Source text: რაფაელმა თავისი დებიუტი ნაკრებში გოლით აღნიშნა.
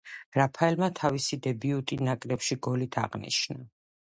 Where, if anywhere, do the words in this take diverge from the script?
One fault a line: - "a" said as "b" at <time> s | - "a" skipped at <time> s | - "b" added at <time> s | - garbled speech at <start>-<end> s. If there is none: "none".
none